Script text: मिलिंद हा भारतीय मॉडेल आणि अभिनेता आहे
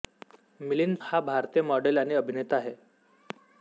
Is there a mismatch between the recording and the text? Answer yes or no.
no